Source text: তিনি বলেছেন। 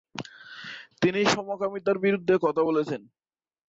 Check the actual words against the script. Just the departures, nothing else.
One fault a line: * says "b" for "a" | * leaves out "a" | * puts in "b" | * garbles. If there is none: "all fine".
* puts in "সমকামিতার বিরুদ্ধে কথা"